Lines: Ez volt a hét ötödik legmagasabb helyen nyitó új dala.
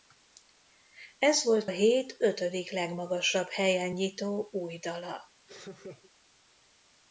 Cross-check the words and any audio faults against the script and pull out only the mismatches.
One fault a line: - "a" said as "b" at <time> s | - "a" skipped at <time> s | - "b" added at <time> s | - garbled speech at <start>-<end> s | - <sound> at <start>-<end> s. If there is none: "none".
- "a" skipped at 1.7 s
- laugh at 5.5-6.1 s